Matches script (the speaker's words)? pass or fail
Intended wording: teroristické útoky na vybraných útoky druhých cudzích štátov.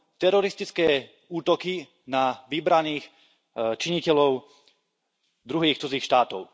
fail